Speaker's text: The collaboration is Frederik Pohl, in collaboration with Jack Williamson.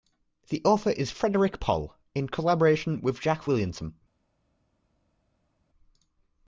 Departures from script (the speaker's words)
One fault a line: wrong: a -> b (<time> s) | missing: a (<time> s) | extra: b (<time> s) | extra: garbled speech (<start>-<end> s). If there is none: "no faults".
wrong: collaboration -> author (0.7 s)